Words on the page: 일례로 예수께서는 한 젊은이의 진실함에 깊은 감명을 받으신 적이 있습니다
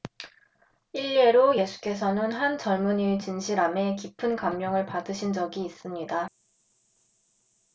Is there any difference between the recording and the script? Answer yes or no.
no